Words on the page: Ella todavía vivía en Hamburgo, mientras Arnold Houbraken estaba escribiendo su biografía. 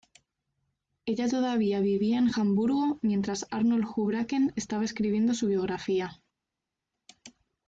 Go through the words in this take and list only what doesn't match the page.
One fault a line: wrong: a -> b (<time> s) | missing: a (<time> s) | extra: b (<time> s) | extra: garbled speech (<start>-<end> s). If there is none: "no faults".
no faults